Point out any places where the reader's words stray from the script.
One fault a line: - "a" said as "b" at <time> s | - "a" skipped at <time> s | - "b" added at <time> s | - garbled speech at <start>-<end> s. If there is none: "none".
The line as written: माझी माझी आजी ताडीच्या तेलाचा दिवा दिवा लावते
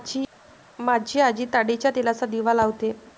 - "माझी" skipped at 1.2 s
- "दिवा" skipped at 2.5 s